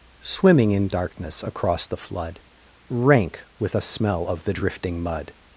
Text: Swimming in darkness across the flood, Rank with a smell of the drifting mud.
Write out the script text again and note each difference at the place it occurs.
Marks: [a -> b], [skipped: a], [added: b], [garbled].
Swimming in darkness across the flood, Rank with a smell of the drifting mud.